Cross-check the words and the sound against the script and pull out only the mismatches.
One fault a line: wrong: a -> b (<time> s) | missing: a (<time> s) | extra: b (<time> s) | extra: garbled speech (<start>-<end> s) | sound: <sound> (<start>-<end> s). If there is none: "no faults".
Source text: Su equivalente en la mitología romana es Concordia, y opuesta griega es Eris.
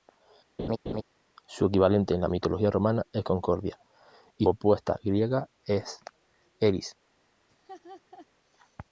sound: laugh (0.6-1.0 s)
sound: laugh (7.5-8.3 s)